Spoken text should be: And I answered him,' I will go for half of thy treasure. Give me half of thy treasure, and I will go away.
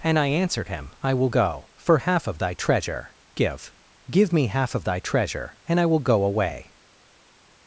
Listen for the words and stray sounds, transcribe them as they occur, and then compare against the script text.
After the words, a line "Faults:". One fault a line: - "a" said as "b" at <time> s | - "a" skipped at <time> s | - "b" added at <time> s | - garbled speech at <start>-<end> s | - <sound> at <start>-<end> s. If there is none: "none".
And I answered him,' I will go for half of thy treasure. Give Give me half of thy treasure, and I will go away.
Faults:
- "Give" added at 4.1 s